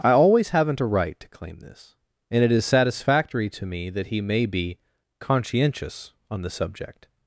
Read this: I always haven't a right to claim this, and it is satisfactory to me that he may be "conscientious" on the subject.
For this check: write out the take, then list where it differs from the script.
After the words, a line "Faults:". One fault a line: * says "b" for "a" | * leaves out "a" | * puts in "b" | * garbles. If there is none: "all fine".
I always haven't a right to claim this, and it is satisfactory to me that he may be "conscientious" on the subject.
Faults:
all fine